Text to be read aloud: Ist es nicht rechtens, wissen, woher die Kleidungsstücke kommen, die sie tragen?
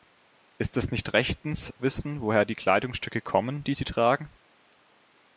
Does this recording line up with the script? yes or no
yes